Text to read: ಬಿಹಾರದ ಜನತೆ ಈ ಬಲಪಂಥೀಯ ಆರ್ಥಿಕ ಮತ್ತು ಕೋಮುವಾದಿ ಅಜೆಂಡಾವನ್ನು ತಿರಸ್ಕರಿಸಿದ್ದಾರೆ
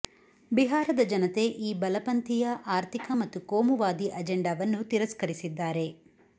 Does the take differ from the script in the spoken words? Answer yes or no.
no